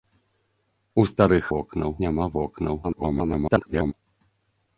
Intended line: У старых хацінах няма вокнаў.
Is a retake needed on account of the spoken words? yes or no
yes